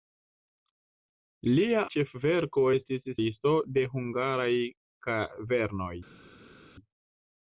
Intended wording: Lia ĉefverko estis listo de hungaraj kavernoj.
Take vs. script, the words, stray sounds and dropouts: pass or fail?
pass